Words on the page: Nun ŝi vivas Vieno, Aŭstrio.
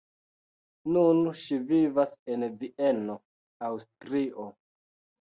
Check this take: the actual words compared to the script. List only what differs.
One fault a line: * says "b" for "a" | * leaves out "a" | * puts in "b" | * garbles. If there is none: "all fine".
* puts in "en"